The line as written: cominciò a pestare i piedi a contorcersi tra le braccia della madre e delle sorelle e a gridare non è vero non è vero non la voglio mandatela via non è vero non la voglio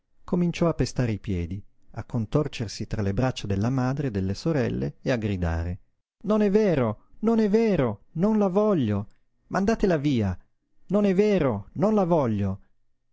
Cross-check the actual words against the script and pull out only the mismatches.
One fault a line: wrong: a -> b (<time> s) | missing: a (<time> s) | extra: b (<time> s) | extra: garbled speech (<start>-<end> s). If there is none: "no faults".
no faults